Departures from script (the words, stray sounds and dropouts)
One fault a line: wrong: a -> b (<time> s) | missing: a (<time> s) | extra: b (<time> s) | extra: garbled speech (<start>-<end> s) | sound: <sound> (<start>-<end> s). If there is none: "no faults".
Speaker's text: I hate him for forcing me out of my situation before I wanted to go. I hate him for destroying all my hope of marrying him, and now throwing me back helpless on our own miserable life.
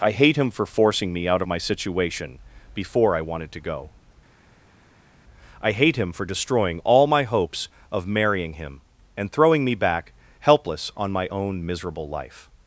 wrong: hope -> hopes (7.2 s)
missing: now (9.3 s)
wrong: our -> my (11.1 s)